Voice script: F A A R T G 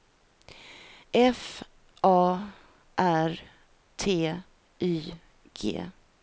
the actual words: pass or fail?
fail